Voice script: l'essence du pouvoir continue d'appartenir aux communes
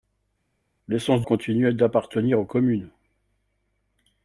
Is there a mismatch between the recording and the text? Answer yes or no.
yes